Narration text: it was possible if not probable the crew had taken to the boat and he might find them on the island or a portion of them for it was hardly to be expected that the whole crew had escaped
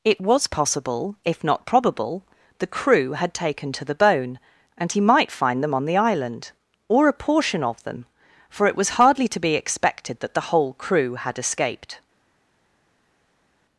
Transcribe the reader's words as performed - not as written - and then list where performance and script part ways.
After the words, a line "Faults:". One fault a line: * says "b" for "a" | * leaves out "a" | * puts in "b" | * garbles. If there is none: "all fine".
it was possible if not probable the crew had taken to the bone and he might find them on the island or a portion of them for it was hardly to be expected that the whole crew had escaped
Faults:
* says "bone" for "boat"